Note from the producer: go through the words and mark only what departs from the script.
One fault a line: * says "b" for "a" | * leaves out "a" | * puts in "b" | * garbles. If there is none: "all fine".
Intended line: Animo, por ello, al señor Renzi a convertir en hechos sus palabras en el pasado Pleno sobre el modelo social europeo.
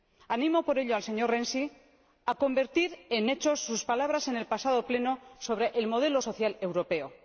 all fine